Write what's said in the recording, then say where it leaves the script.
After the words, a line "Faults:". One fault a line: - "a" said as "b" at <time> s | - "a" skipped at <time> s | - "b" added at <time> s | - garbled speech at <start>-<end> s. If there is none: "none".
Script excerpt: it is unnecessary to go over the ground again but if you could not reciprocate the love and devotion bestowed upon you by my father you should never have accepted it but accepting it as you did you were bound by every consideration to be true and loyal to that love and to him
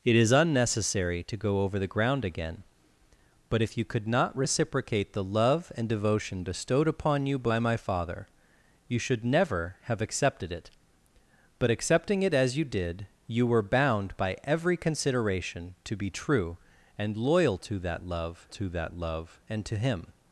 it is unnecessary to go over the ground again but if you could not reciprocate the love and devotion bestowed upon you by my father you should never have accepted it but accepting it as you did you were bound by every consideration to be true and loyal to that love to that love and to him
Faults:
- "to that love" added at 18.5 s